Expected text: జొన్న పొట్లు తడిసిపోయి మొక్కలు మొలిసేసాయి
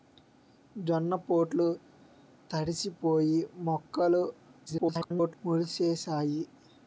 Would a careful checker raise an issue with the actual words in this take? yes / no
yes